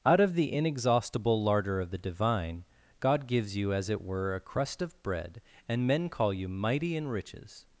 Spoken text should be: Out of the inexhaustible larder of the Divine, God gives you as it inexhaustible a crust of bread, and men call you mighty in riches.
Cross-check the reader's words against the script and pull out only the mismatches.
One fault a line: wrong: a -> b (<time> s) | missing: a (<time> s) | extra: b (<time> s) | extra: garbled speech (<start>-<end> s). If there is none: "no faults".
wrong: inexhaustible -> were (4.0 s)